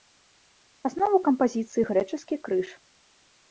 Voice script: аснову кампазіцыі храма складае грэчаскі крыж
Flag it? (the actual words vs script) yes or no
yes